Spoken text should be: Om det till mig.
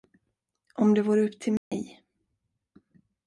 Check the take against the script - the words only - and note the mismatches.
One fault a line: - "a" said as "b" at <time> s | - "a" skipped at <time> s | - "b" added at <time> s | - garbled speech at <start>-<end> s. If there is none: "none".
- "vore upp" added at 1.0 s